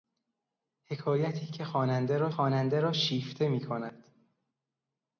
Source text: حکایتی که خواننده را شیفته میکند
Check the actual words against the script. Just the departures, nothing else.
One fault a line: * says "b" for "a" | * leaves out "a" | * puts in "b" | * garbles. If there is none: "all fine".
* puts in "خواننده را"